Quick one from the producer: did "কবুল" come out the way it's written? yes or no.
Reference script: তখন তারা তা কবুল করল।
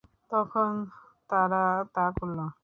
no